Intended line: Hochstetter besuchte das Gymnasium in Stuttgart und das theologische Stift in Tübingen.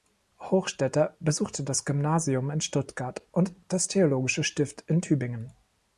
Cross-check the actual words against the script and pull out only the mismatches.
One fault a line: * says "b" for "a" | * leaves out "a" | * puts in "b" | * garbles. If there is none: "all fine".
all fine